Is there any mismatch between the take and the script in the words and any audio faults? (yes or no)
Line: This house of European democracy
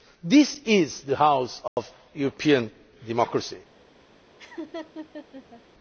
yes